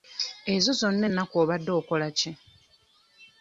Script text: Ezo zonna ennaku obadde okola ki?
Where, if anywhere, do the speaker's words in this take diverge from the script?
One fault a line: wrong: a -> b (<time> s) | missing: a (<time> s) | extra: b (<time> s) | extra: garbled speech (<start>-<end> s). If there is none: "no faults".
no faults